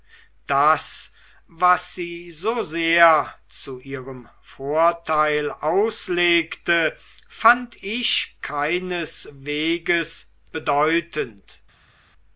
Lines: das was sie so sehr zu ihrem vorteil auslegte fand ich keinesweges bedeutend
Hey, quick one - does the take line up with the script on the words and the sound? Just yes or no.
yes